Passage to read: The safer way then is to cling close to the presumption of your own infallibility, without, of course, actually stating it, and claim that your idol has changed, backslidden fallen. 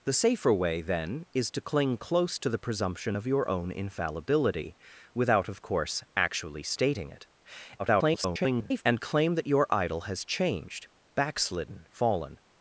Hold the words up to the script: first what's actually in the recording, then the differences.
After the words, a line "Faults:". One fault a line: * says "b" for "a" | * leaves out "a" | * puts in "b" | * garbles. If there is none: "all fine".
The safer way then is to cling close to the presumption of your own infallibility, without, of course, actually stating it, [garbled] and claim that your idol has changed, backslidden fallen.
Faults:
* garbles